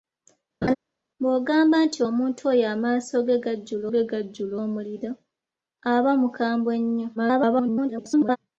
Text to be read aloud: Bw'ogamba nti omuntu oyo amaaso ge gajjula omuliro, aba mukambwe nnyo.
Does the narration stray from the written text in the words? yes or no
yes